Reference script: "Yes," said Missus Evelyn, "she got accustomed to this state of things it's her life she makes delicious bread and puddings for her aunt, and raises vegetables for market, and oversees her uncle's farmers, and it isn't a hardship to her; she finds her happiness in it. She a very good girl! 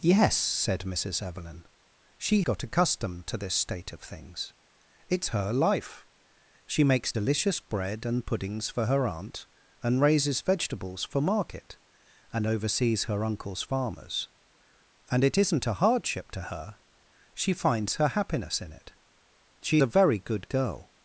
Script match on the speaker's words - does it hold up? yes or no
yes